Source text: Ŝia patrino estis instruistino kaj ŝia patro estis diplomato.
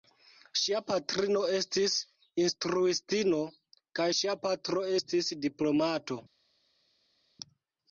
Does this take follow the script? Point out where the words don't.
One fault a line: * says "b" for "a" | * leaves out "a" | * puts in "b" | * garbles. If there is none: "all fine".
all fine